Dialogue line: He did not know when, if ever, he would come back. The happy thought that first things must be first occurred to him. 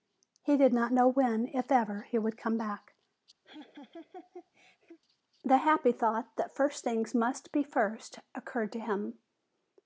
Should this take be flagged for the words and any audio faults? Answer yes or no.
yes